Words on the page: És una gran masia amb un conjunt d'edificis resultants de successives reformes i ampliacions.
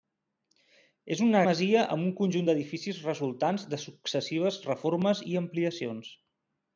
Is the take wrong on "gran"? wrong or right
wrong